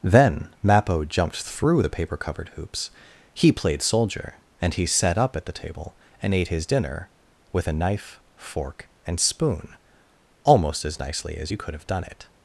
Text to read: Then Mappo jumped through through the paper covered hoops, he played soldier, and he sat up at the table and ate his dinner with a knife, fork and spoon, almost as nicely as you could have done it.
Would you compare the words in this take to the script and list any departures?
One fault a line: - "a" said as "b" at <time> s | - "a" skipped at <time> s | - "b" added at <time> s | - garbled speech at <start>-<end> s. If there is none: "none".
- "through" skipped at 1.8 s